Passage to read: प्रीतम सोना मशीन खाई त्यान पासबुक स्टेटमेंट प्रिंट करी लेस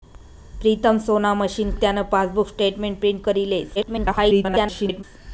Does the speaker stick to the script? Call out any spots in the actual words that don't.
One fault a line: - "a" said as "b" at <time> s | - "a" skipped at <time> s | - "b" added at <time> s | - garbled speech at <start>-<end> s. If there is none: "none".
- "खाई" skipped at 1.8 s
- garbled speech at 3.8-5.0 s